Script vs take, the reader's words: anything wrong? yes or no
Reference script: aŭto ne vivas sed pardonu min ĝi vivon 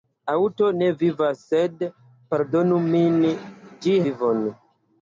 no